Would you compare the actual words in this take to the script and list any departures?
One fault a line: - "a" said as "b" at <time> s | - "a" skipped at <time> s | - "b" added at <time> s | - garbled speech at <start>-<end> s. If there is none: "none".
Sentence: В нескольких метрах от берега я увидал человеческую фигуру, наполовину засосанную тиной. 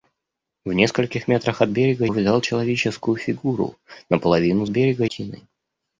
- "я" skipped at 2.1 s
- "засосанную" said as "берега" at 4.7 s